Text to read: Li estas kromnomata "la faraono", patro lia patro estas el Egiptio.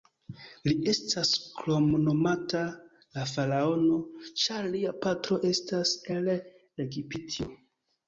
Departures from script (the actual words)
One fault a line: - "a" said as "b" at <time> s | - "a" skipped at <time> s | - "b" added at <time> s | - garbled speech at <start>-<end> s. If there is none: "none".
- "patro" said as "ĉar" at 4.4 s